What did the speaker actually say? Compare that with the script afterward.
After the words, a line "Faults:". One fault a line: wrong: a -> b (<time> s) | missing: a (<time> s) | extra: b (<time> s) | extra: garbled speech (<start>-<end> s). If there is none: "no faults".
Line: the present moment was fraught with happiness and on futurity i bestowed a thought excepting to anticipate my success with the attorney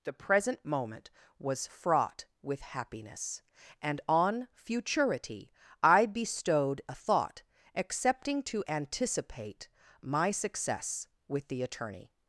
the present moment was fraught with happiness and on futurity i bestowed a thought excepting to anticipate my success with the attorney
Faults:
no faults